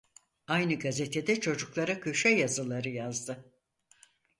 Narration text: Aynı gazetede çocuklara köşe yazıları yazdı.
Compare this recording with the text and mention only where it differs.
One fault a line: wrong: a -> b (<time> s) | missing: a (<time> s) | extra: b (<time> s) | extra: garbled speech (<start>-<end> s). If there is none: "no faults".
no faults